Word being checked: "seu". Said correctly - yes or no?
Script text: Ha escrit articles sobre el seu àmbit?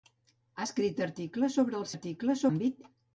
no